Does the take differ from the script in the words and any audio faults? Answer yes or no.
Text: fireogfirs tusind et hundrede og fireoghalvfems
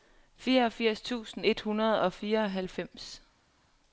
no